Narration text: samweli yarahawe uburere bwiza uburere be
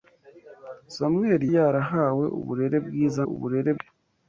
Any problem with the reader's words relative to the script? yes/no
no